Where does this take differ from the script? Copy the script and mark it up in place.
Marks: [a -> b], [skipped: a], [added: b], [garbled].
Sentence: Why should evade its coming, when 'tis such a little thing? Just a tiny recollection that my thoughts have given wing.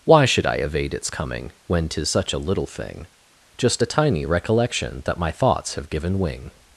Why should [added: I] evade its coming, when 'tis such a little thing? Just a tiny recollection that my thoughts have given wing.